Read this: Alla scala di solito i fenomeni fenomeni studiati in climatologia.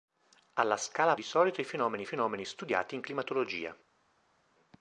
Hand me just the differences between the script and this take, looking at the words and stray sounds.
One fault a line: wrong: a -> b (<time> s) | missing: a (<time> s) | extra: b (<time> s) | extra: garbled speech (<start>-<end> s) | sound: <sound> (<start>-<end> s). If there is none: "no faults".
no faults